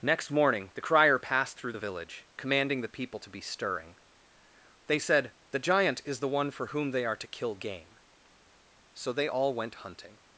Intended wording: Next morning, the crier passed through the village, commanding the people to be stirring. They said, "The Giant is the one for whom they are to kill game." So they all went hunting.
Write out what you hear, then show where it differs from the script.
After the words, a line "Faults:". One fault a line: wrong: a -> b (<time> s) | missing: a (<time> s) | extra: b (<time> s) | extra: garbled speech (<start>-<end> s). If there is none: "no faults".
Next morning, the crier passed through the village, commanding the people to be stirring. They said, "The Giant is the one for whom they are to kill game." So they all went hunting.
Faults:
no faults